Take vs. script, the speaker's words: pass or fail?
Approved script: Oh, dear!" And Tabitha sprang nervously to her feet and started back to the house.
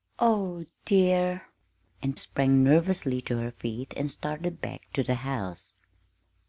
fail